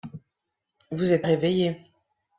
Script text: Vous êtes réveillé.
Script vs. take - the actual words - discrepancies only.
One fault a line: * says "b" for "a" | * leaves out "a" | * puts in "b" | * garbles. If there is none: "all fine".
all fine